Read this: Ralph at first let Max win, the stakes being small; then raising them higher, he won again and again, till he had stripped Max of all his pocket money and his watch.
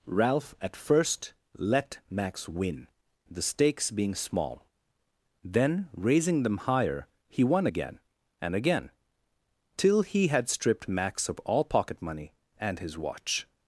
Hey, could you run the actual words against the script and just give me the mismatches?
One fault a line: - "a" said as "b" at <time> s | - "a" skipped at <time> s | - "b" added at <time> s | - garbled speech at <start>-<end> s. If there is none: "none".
- "his" skipped at 11.6 s